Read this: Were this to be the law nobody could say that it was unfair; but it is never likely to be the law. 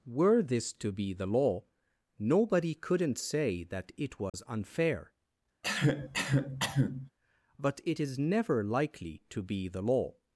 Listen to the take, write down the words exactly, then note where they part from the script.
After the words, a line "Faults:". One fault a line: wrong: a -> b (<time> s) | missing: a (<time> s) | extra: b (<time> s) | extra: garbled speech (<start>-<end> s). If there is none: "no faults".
Were this to be the law nobody couldn't say that it was unfair; but it is never likely to be the law.
Faults:
wrong: could -> couldn't (2.8 s)